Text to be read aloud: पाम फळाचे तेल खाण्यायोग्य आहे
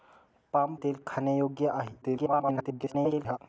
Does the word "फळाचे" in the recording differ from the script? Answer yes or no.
yes